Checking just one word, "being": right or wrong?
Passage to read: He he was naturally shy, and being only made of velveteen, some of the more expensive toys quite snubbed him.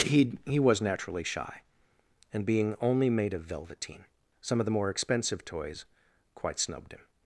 right